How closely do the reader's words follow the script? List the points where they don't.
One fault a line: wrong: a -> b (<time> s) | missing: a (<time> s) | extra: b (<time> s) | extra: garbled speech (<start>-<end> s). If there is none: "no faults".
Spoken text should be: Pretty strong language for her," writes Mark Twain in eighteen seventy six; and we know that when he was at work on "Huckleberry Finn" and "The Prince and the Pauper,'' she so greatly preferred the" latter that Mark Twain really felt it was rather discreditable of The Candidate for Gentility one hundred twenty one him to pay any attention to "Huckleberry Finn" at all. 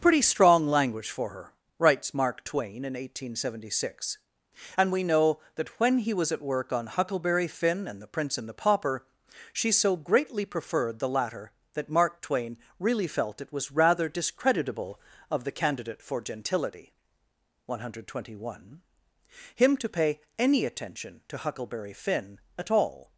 no faults